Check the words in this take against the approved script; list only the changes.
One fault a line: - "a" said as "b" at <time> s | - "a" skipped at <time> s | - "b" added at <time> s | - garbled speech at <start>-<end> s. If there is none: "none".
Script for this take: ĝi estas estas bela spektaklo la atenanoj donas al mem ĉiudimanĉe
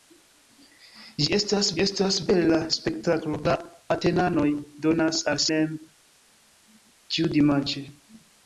none